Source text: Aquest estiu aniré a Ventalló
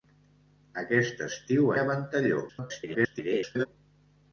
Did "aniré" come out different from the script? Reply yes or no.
yes